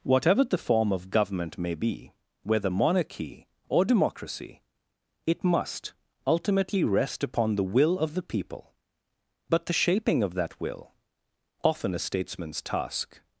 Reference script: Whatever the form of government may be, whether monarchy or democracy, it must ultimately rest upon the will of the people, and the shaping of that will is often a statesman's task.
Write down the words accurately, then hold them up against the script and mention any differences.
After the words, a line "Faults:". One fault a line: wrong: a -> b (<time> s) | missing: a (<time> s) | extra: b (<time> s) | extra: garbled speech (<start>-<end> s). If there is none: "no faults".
Whatever the form of government may be, whether monarchy or democracy, it must ultimately rest upon the will of the people, but the shaping of that will often a statesman's task.
Faults:
wrong: and -> but (9.5 s)
missing: is (10.9 s)